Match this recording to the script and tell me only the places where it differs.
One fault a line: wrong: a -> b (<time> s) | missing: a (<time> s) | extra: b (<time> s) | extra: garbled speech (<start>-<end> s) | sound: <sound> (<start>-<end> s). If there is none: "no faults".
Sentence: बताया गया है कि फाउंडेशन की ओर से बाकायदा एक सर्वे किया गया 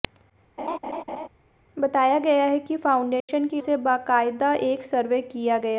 sound: laugh (0.6-1.3 s)
sound: dropout (3.2-3.3 s)
missing: ओर (3.6 s)